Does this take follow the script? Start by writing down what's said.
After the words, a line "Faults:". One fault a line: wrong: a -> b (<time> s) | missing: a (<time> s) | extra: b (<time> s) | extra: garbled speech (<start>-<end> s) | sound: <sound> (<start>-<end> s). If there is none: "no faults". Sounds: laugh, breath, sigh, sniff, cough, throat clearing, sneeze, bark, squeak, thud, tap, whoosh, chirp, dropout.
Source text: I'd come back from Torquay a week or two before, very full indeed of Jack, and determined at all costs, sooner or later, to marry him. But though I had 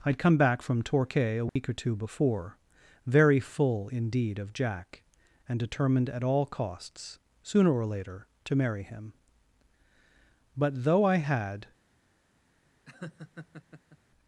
I'd come back from Torquay a week or two before, very full indeed of Jack, and determined at all costs, sooner or later, to marry him. But though I had
Faults:
sound: dropout (1.5-1.6 s)
sound: laugh (12.8-14.0 s)